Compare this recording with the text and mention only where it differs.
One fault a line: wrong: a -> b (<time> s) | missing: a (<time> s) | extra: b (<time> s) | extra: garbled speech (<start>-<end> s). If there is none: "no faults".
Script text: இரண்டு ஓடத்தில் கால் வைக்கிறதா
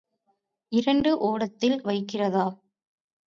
missing: கால் (1.8 s)